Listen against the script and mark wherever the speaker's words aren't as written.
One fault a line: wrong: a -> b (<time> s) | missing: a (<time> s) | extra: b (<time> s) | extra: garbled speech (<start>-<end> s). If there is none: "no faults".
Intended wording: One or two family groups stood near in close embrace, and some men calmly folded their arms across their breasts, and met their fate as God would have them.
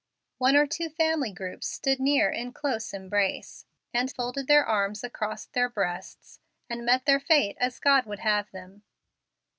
missing: some men calmly (4.1 s)